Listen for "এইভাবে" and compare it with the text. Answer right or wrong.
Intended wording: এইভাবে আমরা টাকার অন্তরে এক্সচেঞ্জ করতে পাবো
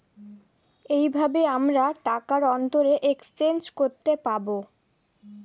right